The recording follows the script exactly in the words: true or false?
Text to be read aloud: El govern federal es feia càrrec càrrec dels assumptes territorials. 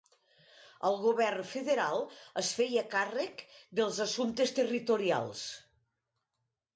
false